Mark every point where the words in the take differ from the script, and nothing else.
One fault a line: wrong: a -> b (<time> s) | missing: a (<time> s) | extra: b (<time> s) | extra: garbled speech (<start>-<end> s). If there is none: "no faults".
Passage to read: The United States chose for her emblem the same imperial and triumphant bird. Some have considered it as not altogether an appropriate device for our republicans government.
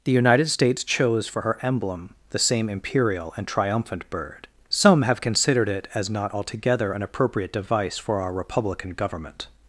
wrong: republicans -> republican (8.3 s)